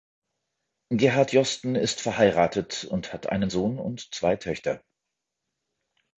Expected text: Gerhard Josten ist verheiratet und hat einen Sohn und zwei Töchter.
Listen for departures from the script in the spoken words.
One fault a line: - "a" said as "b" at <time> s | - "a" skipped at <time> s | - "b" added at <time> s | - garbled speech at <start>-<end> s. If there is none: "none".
none